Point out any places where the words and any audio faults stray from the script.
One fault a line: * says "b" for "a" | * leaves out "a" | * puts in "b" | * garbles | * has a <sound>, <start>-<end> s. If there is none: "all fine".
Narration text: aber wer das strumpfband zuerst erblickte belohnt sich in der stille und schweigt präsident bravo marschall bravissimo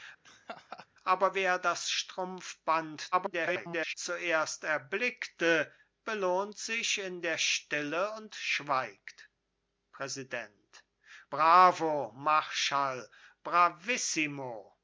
* has a laugh, 0.2-0.9 s
* garbles